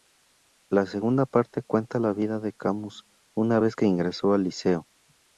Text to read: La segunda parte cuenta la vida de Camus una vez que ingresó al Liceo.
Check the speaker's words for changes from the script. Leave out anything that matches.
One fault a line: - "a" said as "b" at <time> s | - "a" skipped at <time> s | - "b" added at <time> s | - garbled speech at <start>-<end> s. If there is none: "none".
none